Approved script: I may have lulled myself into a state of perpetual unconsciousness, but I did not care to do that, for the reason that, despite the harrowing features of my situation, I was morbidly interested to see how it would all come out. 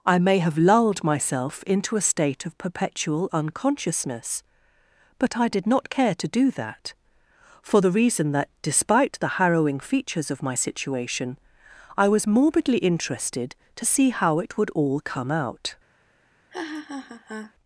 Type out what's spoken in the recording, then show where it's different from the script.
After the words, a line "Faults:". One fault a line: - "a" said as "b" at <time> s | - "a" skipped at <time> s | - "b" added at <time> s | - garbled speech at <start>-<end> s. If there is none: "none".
I may have lulled myself into a state of perpetual unconsciousness, but I did not care to do that, for the reason that, despite the harrowing features of my situation, I was morbidly interested to see how it would all come out.
Faults:
none